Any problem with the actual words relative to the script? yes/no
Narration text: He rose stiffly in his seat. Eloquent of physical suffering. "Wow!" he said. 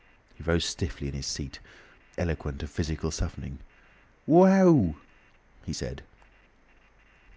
no